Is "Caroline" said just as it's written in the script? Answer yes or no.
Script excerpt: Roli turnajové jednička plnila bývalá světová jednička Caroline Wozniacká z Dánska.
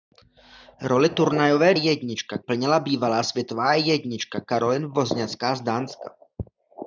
yes